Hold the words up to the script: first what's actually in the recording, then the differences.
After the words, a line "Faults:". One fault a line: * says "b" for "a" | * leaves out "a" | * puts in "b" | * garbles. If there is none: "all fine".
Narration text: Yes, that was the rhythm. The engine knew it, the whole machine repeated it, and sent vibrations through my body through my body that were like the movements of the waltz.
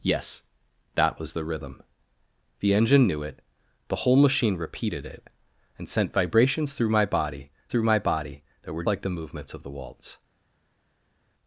Yes, that was the rhythm. The engine knew it, the whole machine repeated it, and sent vibrations through my body through my body that were like the movements of the waltz.
Faults:
all fine